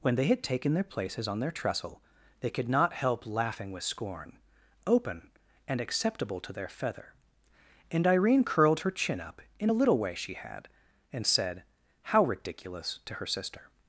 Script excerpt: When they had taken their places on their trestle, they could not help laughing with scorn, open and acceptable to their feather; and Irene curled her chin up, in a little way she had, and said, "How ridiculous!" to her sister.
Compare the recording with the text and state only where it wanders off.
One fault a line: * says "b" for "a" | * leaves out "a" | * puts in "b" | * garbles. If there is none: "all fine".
all fine